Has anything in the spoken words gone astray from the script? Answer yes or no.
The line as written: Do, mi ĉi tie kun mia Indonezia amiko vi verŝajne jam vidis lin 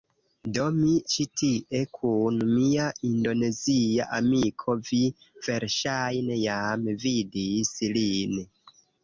no